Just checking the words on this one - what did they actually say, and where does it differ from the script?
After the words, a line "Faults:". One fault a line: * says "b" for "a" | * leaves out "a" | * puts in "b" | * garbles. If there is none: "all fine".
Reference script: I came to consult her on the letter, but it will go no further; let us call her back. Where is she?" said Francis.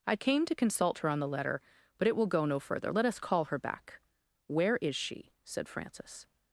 I came to consult her on the letter, but it will go no further; let us call her back. Where is she?" said Francis.
Faults:
all fine